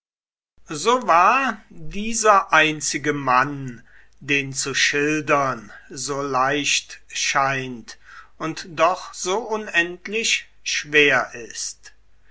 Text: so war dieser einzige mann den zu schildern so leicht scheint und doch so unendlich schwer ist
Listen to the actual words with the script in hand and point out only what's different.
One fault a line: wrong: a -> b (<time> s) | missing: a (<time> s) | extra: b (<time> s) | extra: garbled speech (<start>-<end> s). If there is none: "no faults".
no faults